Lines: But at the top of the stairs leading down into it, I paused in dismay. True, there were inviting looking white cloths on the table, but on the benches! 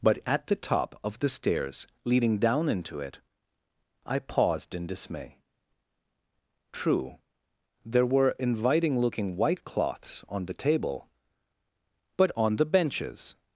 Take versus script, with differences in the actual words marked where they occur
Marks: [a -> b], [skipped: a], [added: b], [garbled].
But at the top of the stairs leading down into it, I paused in dismay. True, there were inviting looking white cloths on the table, but on the benches!